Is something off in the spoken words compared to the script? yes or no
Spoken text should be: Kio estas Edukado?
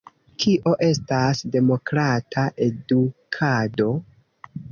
yes